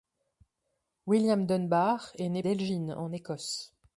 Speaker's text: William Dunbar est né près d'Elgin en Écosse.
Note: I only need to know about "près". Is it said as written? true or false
false